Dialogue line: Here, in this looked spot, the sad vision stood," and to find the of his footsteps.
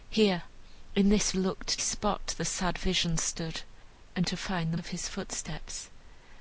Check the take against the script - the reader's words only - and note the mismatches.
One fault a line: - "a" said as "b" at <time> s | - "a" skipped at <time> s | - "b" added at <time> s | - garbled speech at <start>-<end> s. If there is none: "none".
none